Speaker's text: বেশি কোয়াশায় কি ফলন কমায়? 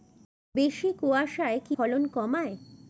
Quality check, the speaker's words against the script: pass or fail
pass